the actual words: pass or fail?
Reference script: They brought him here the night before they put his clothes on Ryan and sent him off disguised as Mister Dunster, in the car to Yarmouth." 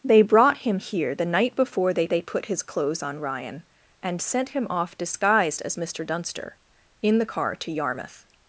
fail